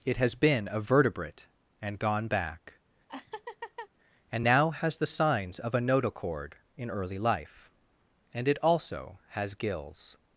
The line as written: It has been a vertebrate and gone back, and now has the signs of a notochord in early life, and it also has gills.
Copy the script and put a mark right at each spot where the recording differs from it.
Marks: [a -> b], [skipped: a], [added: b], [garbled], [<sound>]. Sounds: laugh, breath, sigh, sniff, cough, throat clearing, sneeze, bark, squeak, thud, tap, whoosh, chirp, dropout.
It has been a vertebrate and gone back, [laugh] and now has the signs of a notochord in early life, and it also has gills.